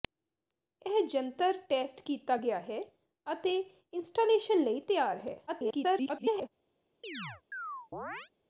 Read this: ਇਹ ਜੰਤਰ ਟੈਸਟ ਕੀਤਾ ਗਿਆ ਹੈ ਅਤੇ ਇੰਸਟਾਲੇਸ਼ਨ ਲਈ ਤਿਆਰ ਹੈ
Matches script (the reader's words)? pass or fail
fail